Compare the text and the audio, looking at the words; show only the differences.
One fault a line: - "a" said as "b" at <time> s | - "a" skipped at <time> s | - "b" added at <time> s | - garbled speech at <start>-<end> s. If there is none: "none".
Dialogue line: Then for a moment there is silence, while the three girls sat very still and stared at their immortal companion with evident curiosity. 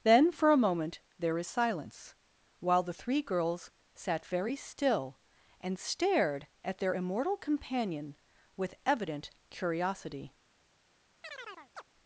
none